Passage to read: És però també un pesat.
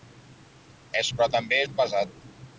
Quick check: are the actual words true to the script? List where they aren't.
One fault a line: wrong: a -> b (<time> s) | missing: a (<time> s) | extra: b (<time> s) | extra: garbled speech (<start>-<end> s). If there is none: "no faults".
no faults